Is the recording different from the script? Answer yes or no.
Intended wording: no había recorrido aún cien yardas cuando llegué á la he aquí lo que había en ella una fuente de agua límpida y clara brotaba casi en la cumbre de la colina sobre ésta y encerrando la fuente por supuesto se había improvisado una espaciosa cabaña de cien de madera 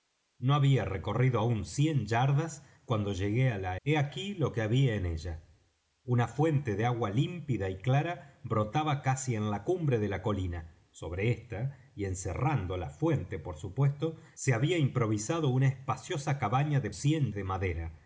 no